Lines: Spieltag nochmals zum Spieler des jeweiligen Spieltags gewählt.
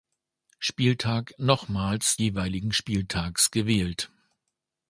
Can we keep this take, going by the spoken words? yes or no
no